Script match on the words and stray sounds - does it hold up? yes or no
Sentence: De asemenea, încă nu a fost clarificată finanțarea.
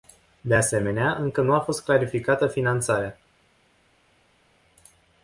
yes